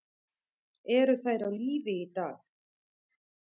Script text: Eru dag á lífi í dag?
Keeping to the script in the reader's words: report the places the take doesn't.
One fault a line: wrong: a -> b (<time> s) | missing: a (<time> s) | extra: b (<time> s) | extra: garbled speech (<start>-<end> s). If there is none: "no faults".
wrong: dag -> þær (1.2 s)